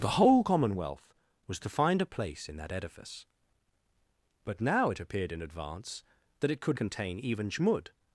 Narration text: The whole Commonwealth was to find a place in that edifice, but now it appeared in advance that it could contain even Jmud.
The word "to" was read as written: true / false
true